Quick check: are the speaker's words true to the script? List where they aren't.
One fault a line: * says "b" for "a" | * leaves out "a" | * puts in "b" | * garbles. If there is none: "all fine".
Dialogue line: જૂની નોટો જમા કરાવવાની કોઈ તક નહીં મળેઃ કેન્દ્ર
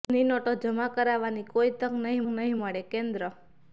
* puts in "નહીં"